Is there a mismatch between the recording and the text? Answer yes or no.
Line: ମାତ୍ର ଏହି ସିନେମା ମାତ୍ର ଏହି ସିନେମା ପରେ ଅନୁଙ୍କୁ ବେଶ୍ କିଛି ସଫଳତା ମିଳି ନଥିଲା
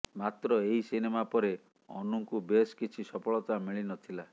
yes